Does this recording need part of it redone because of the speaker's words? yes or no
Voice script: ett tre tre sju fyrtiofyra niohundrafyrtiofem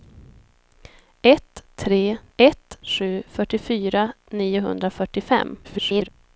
yes